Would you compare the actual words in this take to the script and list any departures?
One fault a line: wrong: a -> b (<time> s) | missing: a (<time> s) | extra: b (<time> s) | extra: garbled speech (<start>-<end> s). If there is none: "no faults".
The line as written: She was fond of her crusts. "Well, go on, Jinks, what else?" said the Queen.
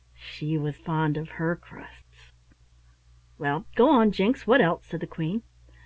no faults